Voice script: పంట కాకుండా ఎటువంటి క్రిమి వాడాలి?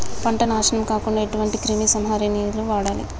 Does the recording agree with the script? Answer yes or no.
no